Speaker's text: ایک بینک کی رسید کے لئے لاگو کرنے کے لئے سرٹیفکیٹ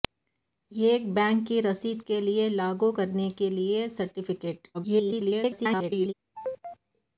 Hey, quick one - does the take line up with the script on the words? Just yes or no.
no